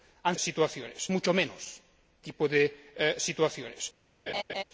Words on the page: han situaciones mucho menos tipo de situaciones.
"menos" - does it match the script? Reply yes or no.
yes